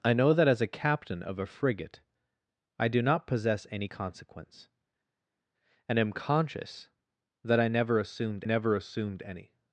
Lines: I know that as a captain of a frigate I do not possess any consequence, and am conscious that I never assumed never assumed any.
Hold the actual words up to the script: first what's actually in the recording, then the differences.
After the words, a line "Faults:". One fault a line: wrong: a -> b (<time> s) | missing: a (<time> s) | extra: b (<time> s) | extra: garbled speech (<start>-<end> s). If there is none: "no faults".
I know that as a captain of a frigate I do not possess any consequence, and am conscious that I never assumed never assumed any.
Faults:
no faults